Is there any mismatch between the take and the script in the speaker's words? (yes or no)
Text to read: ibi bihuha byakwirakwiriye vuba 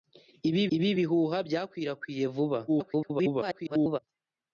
yes